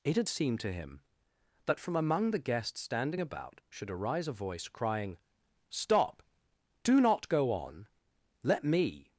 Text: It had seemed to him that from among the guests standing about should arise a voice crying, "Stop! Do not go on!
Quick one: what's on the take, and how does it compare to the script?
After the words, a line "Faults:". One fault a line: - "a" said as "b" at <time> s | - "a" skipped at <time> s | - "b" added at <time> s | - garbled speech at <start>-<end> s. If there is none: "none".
It had seemed to him that from among the guests standing about should arise a voice crying, "Stop! Do not go on! Let me
Faults:
- "Let me" added at 8.4 s